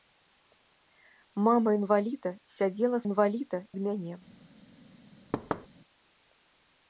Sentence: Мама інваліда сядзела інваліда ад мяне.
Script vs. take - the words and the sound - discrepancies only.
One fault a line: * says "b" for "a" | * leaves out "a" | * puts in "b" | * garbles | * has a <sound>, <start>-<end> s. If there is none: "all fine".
* has a thud, 5.3-5.7 s